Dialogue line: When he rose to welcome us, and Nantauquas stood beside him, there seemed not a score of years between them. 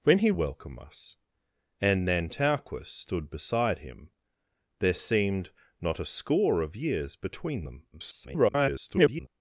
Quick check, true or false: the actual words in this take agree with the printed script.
false